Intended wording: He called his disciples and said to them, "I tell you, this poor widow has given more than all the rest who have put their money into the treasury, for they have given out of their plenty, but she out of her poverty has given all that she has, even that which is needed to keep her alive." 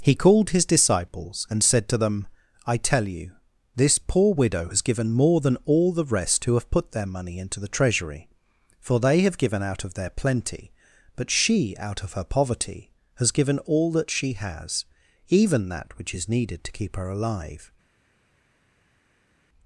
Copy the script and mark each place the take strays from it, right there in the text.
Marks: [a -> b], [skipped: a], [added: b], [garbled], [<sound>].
He called his disciples and said to them, "I tell you, this poor widow has given more than all the rest who have put their money into the treasury, for they have given out of their plenty, but she out of her poverty has given all that she has, even that which is needed to keep her alive."